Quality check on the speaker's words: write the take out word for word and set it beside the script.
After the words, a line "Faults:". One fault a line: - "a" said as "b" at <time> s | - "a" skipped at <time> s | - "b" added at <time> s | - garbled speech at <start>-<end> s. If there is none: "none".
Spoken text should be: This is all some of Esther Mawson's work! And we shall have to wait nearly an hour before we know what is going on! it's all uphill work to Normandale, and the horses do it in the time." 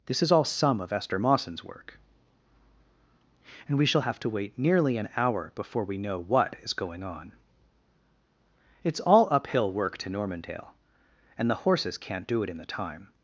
This is all some of Esther Mawson's work! And we shall have to wait nearly an hour before we know what is going on! it's all uphill work to Normandale, and the horses can't do it in the time."
Faults:
- "can't" added at 12.0 s